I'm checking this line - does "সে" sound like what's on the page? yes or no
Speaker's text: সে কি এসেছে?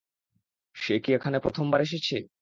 yes